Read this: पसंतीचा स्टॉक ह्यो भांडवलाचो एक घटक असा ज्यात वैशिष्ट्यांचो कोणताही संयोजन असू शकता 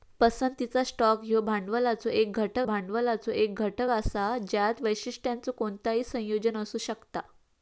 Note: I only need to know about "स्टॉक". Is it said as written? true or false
true